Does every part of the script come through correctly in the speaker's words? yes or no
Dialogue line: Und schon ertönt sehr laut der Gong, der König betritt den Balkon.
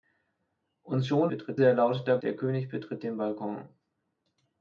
no